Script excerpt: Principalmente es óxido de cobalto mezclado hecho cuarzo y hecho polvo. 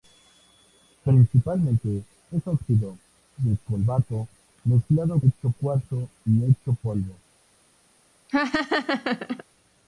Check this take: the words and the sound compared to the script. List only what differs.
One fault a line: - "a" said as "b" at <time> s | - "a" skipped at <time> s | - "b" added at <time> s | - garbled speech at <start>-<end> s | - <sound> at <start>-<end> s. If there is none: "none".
- laugh at 8.3-9.4 s